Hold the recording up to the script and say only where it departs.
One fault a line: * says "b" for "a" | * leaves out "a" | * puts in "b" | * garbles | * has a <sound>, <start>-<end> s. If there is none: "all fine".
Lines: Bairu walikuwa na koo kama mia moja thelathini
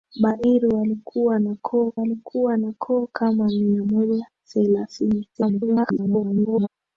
* puts in "walikuwa na koo"
* garbles